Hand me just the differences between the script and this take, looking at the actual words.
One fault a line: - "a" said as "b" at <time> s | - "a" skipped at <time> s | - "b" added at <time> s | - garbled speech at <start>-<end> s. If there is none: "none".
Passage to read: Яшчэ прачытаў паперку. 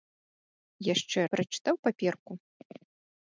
none